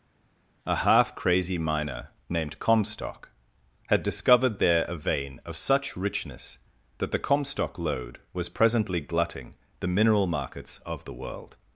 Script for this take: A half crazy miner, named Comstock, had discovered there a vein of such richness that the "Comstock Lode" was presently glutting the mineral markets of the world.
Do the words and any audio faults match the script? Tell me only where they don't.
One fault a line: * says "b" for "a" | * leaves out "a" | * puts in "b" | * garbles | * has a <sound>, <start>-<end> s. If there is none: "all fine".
all fine